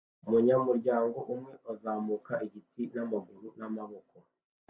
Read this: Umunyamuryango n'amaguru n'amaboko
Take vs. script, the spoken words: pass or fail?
fail